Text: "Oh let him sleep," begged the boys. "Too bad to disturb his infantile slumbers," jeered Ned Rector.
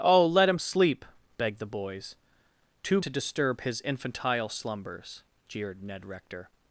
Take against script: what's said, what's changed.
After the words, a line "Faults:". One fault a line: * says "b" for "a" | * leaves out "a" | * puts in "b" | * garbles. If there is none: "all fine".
"Oh let him sleep," begged the boys. "Too to disturb his infantile slumbers," jeered Ned Rector.
Faults:
* leaves out "bad"